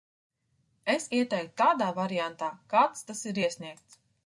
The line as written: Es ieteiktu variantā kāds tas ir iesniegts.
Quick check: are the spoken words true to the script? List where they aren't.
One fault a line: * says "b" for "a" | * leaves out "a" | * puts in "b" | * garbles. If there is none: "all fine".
* puts in "tādā"